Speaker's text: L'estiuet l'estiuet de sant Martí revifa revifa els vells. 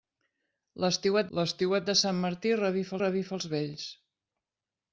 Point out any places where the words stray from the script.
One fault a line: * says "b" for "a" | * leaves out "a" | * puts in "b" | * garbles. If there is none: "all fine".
all fine